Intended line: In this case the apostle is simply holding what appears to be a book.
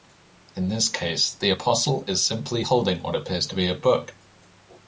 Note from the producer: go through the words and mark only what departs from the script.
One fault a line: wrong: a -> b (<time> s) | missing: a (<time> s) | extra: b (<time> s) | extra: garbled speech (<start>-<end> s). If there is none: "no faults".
no faults